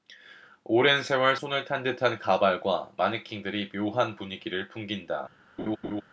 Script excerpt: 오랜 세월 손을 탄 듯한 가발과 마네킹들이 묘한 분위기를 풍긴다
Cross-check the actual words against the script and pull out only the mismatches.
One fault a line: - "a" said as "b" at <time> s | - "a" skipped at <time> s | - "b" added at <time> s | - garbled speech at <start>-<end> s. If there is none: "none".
none